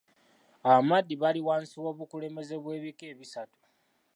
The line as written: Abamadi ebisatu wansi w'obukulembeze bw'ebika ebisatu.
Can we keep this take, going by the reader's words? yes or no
no